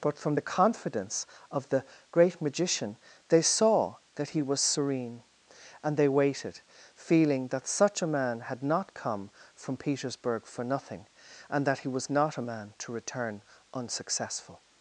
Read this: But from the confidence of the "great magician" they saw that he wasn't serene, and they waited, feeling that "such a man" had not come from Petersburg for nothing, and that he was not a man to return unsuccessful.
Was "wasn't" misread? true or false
true